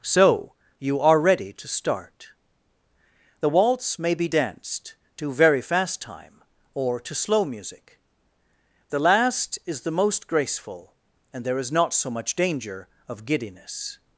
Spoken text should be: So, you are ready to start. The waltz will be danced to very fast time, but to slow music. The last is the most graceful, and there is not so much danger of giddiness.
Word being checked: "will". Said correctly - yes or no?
no